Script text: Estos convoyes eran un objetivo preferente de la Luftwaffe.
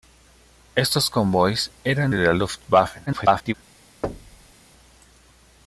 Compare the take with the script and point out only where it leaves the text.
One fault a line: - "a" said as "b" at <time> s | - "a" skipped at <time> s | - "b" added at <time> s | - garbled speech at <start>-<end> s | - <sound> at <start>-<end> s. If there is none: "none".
- "un objetivo preferente" skipped at 2.1 s
- garbled speech at 3.1-3.5 s
- thud at 4.0-4.5 s